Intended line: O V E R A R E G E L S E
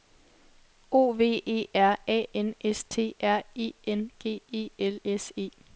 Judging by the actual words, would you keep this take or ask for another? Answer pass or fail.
fail